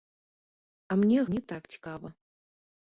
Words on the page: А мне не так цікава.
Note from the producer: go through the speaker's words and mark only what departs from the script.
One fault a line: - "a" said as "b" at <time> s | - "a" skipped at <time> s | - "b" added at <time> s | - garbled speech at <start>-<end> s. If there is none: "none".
none